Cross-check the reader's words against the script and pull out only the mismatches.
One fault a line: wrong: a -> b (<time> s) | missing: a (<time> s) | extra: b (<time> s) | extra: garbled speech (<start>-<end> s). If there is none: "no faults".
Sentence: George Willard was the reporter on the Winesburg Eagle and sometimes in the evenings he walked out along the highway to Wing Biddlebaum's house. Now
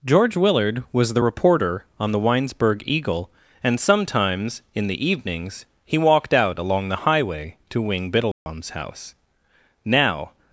no faults